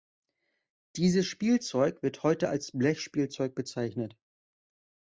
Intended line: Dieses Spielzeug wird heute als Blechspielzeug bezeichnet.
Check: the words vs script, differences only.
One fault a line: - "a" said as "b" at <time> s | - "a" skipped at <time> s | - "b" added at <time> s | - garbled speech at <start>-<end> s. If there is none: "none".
none